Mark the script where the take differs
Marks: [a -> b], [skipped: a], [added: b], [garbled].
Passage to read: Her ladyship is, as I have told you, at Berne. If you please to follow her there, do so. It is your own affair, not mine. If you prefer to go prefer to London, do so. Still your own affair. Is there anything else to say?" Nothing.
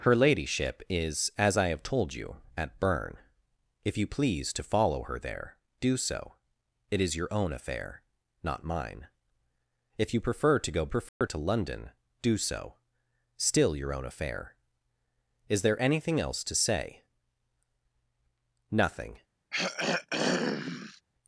Her ladyship is, as I have told you, at Berne. If you please to follow her there, do so. It is your own affair, not mine. If you prefer to go prefer to London, do so. Still your own affair. Is there anything else to say?" Nothing.